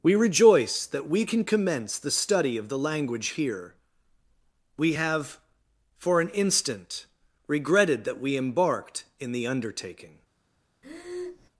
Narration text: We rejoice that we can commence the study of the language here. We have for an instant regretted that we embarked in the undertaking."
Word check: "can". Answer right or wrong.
right